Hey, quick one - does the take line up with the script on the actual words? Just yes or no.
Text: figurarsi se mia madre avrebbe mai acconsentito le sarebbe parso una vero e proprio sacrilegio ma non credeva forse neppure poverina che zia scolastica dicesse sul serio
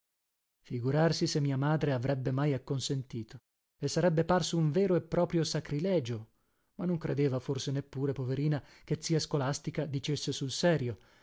no